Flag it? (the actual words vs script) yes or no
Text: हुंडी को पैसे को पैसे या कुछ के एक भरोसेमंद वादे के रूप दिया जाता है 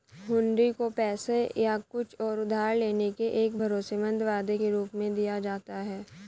yes